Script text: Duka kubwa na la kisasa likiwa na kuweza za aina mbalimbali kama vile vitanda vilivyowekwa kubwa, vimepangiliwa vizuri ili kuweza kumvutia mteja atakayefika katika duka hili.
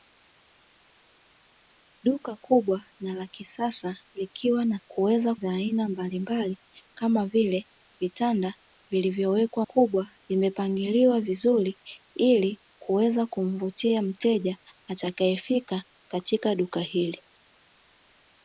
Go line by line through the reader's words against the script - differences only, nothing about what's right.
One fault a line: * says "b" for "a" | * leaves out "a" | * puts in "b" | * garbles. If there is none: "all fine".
all fine